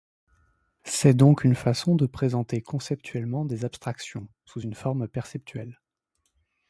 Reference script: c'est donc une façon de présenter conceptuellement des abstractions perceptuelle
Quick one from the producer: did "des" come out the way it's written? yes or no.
yes